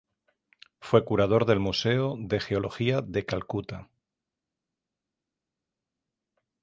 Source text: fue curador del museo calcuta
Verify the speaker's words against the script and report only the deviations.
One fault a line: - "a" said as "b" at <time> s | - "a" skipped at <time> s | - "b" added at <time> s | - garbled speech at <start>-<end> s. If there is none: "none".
- "de geología de" added at 2.2 s